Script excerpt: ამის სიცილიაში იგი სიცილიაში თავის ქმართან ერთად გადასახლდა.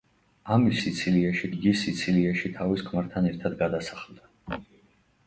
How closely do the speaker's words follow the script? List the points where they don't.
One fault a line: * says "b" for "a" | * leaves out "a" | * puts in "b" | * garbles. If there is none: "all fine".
all fine